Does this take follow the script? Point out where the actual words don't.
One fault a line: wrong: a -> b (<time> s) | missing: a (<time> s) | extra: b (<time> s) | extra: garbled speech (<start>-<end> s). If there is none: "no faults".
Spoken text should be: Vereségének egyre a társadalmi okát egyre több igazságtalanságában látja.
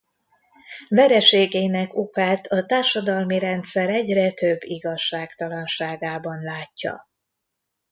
wrong: egyre -> okát (1.9 s)
wrong: okát -> rendszer (3.4 s)